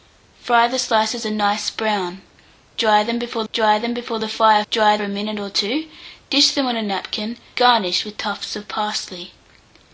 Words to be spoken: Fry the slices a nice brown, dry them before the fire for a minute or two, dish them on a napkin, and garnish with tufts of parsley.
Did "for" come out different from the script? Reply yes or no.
yes